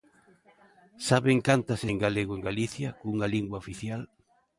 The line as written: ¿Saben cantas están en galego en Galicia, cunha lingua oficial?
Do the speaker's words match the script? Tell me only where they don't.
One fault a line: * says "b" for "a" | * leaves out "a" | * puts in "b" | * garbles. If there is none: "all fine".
* leaves out "están"